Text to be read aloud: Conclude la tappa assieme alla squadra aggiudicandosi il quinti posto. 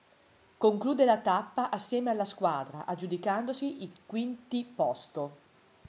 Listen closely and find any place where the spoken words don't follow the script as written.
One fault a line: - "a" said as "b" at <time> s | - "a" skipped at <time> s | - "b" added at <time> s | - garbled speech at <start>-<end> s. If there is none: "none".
none